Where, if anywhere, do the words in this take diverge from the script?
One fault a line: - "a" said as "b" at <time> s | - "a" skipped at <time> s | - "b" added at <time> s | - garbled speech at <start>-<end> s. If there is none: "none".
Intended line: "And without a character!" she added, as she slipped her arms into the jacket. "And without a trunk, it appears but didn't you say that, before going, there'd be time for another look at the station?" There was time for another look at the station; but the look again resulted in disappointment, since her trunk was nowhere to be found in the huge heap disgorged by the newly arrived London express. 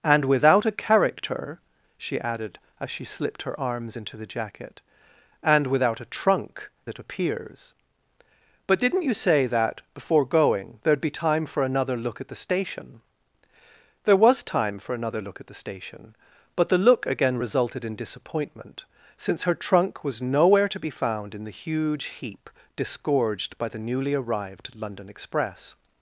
none